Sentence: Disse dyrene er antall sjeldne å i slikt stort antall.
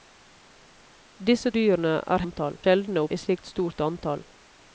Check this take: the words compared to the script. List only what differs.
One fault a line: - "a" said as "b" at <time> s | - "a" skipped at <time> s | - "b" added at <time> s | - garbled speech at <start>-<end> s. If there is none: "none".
none